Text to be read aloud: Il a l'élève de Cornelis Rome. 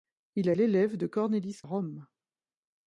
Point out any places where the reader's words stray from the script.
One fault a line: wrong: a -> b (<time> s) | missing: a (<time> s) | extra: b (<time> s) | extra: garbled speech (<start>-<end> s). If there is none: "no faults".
no faults